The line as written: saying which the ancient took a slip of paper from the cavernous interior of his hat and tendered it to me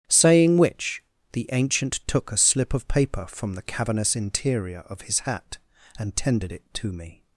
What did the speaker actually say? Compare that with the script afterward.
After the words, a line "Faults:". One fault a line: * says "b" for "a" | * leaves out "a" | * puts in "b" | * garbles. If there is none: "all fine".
saying which the ancient took a slip of paper from the cavernous interior of his hat and tendered it to me
Faults:
all fine